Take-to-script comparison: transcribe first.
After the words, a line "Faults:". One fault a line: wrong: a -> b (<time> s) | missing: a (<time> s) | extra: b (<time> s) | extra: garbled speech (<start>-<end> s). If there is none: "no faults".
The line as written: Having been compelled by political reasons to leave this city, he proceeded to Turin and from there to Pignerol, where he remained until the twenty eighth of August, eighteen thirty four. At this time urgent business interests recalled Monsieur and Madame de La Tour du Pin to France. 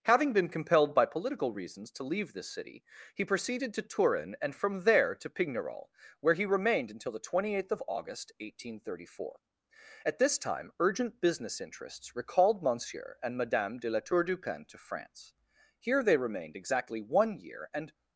Having been compelled by political reasons to leave this city, he proceeded to Turin and from there to Pignerol, where he remained until the twenty eighth of August, eighteen thirty four. At this time urgent business interests recalled Monsieur and Madame de La Tour du Pin to France. Here they remained exactly one year, and
Faults:
extra: Here they remained exactly one year and (15.8 s)